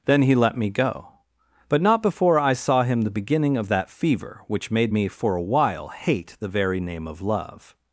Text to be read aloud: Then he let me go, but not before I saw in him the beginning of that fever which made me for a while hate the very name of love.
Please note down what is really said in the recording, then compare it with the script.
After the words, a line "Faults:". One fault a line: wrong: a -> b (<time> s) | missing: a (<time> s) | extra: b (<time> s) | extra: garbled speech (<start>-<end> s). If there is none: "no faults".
Then he let me go, but not before I saw him the beginning of that fever which made me for a while hate the very name of love.
Faults:
missing: in (2.8 s)